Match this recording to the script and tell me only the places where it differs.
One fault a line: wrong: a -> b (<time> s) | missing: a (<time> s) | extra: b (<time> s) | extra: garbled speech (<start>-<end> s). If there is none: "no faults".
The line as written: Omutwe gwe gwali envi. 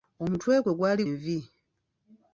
no faults